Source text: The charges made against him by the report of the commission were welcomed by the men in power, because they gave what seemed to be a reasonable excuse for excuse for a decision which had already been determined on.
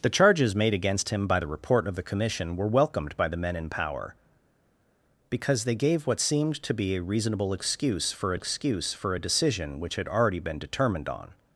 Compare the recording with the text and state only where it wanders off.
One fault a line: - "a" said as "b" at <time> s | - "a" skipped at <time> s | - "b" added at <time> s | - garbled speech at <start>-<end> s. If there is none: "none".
none